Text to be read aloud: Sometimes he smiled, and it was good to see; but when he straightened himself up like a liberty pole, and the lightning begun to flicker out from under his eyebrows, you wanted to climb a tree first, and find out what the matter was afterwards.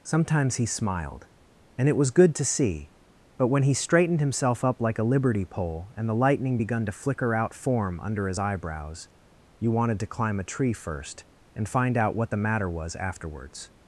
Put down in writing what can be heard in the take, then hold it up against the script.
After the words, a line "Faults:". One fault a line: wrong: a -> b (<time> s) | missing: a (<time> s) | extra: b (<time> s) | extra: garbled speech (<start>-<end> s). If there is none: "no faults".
Sometimes he smiled, and it was good to see; but when he straightened himself up like a liberty pole, and the lightning begun to flicker out form under his eyebrows, you wanted to climb a tree first, and find out what the matter was afterwards.
Faults:
wrong: from -> form (7.5 s)